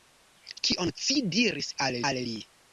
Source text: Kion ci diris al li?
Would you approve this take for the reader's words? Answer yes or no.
no